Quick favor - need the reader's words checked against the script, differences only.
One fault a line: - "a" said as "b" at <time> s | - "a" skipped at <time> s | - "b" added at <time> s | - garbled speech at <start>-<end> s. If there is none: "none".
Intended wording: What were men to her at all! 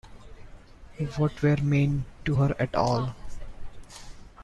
none